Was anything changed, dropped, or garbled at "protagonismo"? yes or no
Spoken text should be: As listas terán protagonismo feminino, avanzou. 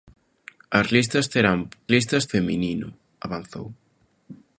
yes